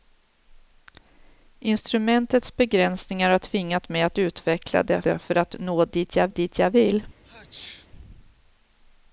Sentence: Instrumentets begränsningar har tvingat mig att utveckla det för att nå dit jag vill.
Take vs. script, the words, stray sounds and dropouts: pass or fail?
fail